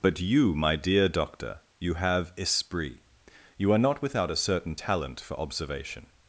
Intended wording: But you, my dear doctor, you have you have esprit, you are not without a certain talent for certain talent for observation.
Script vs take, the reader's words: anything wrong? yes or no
yes